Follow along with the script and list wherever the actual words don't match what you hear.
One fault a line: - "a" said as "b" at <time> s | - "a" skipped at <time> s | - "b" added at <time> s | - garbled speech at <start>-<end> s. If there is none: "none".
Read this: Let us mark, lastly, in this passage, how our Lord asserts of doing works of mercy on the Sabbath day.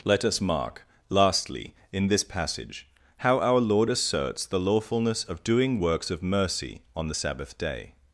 - "the lawfulness" added at 4.5 s